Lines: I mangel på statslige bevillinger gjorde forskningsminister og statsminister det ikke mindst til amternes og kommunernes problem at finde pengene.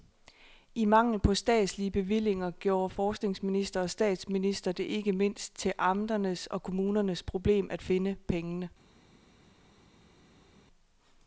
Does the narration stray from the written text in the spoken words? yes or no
no